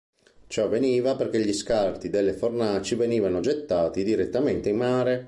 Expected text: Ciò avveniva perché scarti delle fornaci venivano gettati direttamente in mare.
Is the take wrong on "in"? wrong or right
right